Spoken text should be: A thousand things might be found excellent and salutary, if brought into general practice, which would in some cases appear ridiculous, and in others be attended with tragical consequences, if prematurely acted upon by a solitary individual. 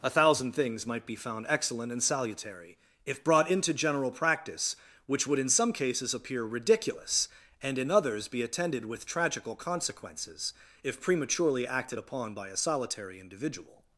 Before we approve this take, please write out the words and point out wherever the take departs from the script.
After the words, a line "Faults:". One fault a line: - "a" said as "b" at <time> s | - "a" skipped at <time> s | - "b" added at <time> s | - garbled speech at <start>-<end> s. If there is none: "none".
A thousand things might be found excellent and salutary, if brought into general practice, which would in some cases appear ridiculous, and in others be attended with tragical consequences, if prematurely acted upon by a solitary individual.
Faults:
none